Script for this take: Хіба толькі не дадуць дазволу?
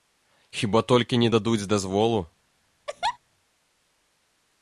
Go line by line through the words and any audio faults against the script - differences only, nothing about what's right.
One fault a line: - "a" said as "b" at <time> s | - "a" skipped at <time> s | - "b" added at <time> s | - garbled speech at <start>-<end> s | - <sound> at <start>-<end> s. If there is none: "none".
- laugh at 2.9-3.2 s